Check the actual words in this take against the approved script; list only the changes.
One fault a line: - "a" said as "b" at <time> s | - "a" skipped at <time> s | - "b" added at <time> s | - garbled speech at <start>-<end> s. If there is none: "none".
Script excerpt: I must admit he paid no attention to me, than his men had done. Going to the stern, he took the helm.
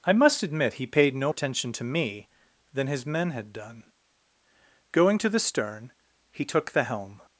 none